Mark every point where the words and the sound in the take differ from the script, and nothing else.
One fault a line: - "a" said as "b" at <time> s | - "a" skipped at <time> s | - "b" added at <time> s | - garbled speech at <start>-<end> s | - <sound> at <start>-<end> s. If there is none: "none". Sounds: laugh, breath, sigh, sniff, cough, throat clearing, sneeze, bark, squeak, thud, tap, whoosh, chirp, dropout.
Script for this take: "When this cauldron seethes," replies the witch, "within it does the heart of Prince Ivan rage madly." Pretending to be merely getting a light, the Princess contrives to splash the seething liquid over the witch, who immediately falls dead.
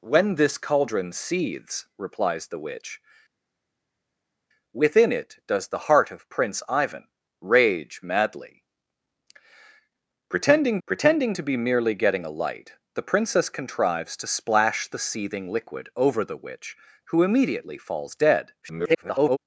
- "pretending" added at 10.9 s
- garbled speech at 18.6-19.4 s